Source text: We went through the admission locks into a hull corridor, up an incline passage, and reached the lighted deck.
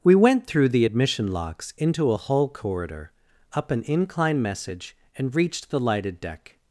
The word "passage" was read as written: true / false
false